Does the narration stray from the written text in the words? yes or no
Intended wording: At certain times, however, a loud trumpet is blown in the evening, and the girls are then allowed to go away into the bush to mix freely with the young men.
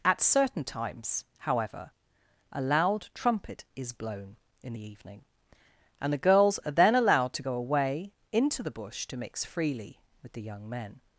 no